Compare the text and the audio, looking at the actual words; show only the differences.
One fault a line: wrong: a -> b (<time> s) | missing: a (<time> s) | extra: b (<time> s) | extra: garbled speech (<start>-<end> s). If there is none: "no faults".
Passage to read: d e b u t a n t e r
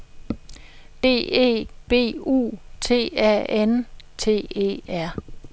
no faults